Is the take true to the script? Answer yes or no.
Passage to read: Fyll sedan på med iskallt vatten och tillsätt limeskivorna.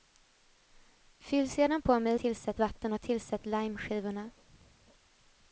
no